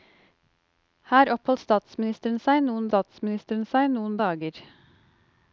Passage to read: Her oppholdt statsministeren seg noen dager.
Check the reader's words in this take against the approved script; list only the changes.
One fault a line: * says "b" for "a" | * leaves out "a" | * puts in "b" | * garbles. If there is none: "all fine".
* puts in "statsministeren seg noen"